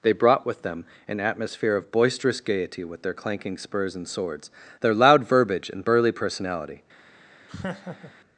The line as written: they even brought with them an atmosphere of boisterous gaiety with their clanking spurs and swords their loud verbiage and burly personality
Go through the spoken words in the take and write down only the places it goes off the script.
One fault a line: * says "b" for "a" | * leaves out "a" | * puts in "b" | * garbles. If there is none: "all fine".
* leaves out "even"